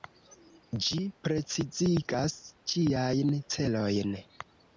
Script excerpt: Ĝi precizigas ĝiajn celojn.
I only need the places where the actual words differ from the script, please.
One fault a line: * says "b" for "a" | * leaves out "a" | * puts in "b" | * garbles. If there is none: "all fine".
all fine